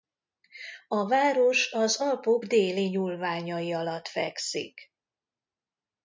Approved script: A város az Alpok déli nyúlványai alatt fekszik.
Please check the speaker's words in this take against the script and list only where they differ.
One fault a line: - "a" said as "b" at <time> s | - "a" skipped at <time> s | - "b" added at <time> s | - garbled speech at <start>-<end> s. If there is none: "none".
none